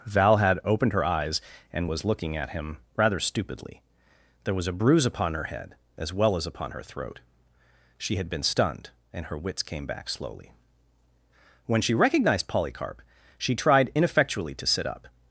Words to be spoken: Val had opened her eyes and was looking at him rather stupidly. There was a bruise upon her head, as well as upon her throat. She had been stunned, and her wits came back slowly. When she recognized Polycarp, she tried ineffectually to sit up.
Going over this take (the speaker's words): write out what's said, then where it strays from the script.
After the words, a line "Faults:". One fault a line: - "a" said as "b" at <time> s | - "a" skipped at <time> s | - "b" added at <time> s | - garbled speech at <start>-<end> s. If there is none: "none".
Val had opened her eyes and was looking at him rather stupidly. There was a bruise upon her head, as well as upon her throat. She had been stunned, and her wits came back slowly. When she recognized Polycarp, she tried ineffectually to sit up.
Faults:
none